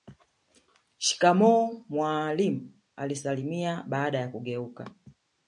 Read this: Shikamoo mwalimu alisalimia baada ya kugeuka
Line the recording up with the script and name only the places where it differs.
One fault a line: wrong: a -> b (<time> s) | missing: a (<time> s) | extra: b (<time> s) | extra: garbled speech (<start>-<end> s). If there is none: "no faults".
no faults